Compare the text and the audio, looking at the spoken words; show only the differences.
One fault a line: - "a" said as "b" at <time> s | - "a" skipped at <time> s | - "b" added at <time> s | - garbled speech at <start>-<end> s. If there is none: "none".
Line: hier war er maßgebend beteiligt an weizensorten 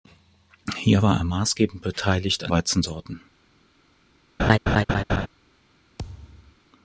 none